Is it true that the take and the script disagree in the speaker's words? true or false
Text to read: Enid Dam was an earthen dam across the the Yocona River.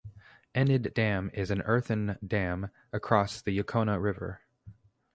true